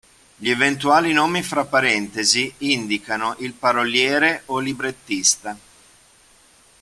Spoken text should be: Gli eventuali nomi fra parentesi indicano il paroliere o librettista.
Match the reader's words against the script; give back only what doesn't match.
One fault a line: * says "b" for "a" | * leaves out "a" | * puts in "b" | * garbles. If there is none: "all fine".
all fine